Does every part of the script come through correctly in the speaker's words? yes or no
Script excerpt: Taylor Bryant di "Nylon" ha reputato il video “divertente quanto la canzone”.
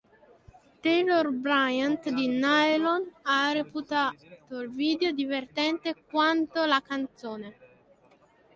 yes